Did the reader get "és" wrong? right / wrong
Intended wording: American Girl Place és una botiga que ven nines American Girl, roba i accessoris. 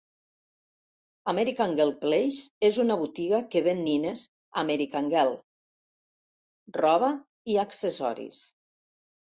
right